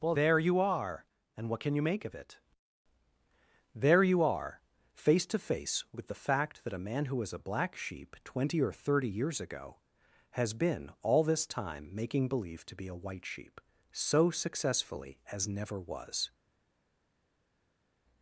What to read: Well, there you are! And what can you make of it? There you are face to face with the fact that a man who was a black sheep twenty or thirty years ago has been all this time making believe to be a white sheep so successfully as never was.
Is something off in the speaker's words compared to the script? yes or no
no